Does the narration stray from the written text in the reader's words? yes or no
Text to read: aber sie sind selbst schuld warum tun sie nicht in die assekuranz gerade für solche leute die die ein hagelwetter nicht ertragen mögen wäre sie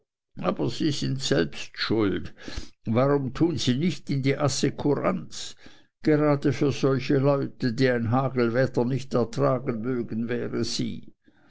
yes